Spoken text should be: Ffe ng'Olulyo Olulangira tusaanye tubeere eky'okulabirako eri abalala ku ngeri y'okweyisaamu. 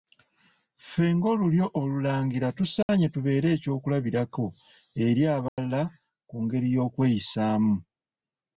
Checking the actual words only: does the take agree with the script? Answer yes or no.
yes